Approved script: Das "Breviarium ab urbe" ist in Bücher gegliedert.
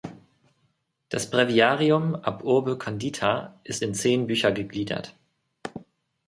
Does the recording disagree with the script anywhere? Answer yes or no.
yes